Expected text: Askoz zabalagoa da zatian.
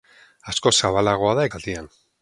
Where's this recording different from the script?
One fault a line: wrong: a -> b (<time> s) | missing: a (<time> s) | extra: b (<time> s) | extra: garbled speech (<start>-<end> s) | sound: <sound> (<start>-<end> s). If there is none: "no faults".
no faults